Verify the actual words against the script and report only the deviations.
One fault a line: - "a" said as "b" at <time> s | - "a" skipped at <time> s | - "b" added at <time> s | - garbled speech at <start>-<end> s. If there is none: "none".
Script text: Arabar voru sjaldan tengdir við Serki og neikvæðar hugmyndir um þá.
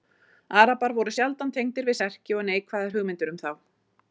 none